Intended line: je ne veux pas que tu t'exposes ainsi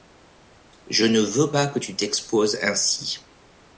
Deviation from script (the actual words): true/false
false